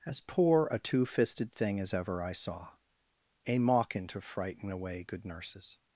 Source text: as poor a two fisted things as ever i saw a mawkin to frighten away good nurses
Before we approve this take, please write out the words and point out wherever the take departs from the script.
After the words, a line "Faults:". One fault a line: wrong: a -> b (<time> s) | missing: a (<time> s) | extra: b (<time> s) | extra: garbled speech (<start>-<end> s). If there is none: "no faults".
as poor a two fisted thing as ever i saw a mawkin to frighten away good nurses
Faults:
wrong: things -> thing (1.5 s)